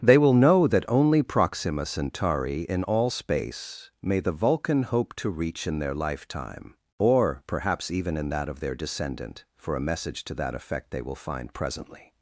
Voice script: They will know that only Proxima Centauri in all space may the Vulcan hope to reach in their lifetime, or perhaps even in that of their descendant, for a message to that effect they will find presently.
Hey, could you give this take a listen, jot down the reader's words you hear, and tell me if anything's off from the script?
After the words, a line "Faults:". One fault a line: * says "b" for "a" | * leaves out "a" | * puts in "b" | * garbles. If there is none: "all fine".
They will know that only Proxima Centauri in all space may the Vulcan hope to reach in their lifetime, or perhaps even in that of their descendant, for a message to that effect they will find presently.
Faults:
all fine